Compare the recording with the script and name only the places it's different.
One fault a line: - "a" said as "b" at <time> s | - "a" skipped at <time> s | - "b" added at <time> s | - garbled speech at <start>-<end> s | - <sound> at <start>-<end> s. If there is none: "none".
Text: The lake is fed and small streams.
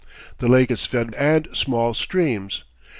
none